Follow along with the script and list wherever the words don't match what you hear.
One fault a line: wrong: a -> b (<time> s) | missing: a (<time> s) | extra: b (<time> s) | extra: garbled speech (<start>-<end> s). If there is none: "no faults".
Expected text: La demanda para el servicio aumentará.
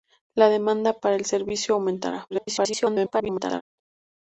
extra: garbled speech (2.3-3.6 s)